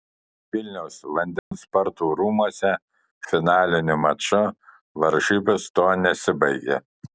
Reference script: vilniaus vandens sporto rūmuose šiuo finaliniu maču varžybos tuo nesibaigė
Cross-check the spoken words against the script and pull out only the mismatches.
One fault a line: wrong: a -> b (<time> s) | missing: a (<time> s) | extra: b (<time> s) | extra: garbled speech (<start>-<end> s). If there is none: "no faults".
missing: šiuo (2.7 s)